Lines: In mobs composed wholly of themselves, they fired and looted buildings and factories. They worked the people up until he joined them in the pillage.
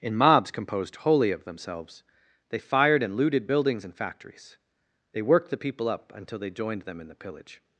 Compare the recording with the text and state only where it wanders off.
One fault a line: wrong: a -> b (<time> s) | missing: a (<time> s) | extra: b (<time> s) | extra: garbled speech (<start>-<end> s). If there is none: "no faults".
wrong: he -> they (6.4 s)